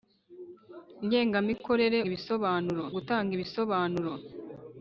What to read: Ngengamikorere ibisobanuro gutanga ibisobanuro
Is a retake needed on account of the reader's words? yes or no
no